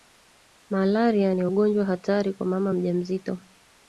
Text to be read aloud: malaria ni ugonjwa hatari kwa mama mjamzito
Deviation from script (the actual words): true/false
false